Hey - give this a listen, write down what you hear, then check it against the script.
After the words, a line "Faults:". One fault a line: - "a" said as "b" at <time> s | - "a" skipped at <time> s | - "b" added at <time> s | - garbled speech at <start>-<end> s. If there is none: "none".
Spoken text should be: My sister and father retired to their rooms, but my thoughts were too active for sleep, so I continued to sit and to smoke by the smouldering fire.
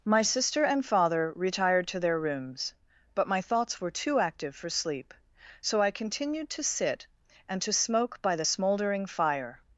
My sister and father retired to their rooms, but my thoughts were too active for sleep, so I continued to sit and to smoke by the smouldering fire.
Faults:
none